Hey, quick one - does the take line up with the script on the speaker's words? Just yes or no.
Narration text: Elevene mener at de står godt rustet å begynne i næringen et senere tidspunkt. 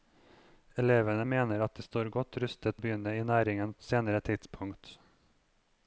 yes